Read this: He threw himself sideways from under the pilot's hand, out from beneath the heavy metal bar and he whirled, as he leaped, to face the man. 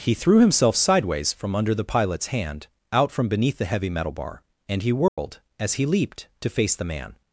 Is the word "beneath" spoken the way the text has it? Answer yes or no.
yes